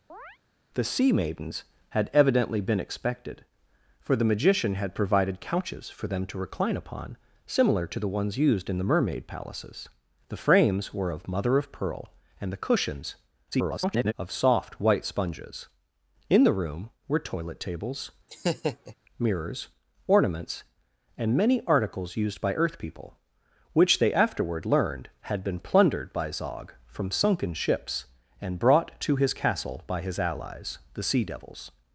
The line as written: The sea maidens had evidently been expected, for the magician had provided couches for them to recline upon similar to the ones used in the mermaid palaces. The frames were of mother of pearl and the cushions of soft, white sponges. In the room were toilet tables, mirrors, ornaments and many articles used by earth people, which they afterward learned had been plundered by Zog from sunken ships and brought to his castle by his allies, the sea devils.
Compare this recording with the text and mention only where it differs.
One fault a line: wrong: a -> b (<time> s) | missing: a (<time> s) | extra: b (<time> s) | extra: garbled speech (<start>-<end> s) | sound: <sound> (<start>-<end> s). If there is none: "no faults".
sound: chirp (0.1-0.4 s)
extra: garbled speech (13.5-14.1 s)
sound: laugh (18.3-19.0 s)